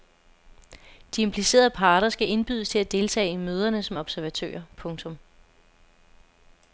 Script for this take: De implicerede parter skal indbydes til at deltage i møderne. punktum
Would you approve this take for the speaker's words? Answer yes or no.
no